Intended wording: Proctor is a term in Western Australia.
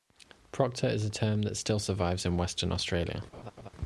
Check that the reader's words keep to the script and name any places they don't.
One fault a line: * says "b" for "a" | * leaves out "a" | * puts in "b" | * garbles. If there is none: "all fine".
* puts in "that still survives"